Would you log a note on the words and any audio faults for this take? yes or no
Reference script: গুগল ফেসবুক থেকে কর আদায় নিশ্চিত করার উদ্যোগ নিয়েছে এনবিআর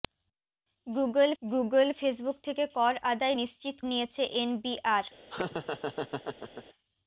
yes